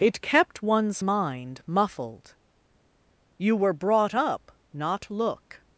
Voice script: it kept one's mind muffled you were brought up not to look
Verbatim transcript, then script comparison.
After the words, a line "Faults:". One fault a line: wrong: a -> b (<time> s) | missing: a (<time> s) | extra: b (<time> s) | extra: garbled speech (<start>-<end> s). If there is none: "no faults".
it kept one's mind muffled you were brought up not look
Faults:
missing: to (5.1 s)